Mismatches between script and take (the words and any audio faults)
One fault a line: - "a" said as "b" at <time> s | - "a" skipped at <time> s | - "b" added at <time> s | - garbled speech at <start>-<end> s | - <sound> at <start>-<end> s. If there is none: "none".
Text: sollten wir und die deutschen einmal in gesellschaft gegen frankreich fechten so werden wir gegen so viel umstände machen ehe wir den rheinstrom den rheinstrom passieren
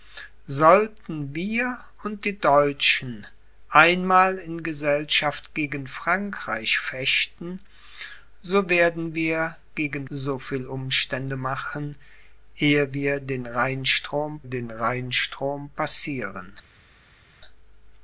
none